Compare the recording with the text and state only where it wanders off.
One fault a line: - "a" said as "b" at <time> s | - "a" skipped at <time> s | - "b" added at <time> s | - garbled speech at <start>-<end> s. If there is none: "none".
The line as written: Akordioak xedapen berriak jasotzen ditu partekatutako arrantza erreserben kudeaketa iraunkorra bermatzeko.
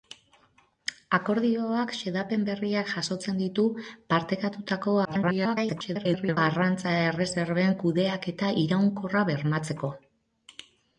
- garbled speech at 5.0-6.4 s